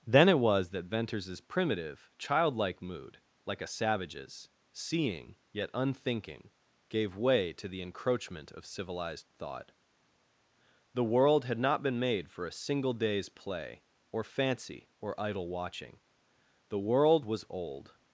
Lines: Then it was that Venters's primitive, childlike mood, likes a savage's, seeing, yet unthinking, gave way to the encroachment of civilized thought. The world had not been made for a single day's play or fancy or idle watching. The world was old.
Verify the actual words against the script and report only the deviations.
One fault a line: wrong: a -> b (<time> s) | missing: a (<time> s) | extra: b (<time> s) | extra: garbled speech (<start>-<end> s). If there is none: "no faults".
wrong: likes -> like (3.5 s)